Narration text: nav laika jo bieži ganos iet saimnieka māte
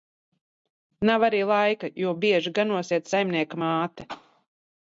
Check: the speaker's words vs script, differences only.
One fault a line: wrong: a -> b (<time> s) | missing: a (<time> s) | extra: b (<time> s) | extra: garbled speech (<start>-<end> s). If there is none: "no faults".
extra: arī (1.3 s)